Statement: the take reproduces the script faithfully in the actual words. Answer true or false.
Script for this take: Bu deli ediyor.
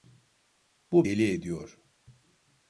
true